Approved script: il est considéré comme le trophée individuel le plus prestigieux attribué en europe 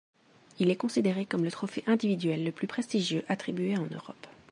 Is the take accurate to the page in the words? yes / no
yes